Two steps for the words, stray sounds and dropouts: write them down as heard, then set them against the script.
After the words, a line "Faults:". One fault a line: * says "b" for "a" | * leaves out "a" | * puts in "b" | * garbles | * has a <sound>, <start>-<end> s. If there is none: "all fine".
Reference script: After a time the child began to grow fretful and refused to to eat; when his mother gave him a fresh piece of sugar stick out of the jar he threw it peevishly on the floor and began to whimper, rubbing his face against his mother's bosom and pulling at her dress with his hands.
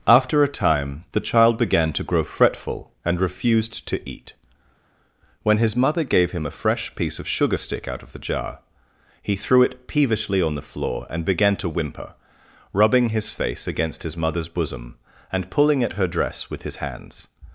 After a time the child began to grow fretful and refused to eat; when his mother gave him a fresh piece of sugar stick out of the jar he threw it peevishly on the floor and began to whimper, rubbing his face against his mother's bosom and pulling at her dress with his hands.
Faults:
* leaves out "to"